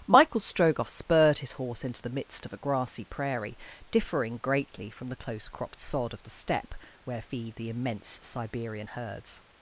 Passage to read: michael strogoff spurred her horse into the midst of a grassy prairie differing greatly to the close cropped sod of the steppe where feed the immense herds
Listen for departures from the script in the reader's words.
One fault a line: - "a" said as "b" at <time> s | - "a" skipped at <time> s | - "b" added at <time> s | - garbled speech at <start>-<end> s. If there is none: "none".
- "her" said as "his" at 1.4 s
- "to" said as "from" at 4.9 s
- "siberian" added at 8.2 s